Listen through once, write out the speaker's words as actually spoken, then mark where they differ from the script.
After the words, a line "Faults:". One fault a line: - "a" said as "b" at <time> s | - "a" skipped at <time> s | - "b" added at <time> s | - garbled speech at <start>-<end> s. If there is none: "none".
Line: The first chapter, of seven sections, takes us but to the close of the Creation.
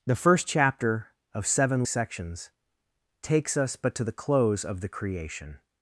The first chapter, of seven sections, takes us but to the close of the Creation.
Faults:
none